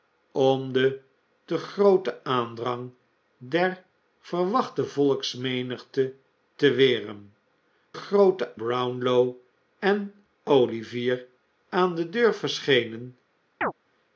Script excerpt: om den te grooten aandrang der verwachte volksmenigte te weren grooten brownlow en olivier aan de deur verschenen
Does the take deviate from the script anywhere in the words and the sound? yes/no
yes